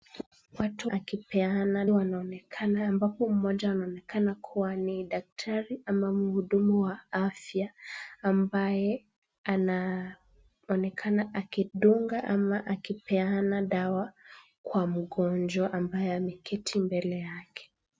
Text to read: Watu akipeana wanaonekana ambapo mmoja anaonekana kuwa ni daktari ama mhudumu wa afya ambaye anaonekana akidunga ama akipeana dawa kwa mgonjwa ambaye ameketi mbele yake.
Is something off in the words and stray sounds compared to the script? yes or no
no